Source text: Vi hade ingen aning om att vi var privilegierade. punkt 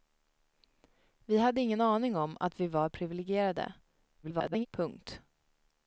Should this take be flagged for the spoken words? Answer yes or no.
yes